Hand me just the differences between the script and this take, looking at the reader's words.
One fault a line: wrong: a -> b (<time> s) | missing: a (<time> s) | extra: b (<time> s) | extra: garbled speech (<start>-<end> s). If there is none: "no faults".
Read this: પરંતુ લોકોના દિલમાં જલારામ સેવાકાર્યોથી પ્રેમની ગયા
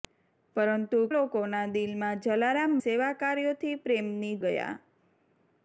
no faults